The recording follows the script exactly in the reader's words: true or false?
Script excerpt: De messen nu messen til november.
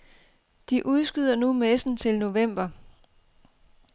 false